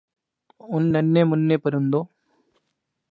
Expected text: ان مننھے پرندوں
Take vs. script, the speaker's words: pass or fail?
fail